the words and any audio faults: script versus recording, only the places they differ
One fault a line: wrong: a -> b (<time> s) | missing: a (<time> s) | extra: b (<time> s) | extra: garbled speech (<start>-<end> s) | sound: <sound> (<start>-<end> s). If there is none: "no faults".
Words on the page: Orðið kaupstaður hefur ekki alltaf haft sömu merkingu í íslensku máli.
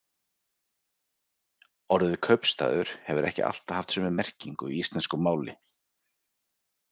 no faults